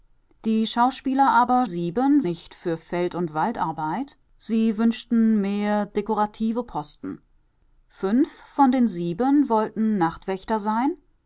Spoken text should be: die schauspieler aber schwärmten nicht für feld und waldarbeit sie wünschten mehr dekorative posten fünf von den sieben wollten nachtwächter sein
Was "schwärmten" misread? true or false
true